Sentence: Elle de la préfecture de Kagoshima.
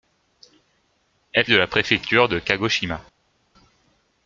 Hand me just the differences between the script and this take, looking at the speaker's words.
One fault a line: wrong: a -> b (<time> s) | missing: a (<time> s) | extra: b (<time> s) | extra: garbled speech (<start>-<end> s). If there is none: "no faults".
no faults